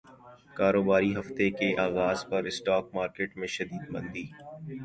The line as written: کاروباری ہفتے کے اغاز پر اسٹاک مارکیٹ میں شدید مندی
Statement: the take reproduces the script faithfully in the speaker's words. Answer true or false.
true